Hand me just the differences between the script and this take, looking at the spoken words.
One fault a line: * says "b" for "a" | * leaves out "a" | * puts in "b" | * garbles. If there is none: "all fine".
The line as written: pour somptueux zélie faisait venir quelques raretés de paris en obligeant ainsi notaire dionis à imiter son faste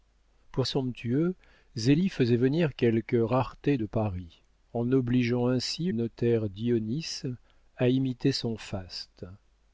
all fine